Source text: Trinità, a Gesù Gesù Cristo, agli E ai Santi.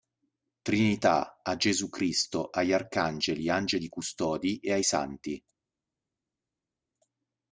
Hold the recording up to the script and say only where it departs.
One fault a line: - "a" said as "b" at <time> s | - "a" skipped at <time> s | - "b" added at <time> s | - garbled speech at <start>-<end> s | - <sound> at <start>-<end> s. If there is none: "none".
- "Gesù" skipped at 1.9 s
- "Arcangeli Angeli Custodi" added at 2.7 s